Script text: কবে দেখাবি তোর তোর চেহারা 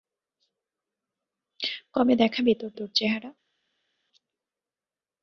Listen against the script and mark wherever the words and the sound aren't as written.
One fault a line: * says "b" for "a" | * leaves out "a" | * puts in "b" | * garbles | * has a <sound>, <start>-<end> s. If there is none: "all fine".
all fine